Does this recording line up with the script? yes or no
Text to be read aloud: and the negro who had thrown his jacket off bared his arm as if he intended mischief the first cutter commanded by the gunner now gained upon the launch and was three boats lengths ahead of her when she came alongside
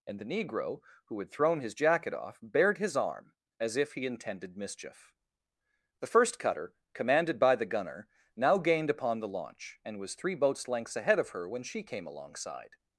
yes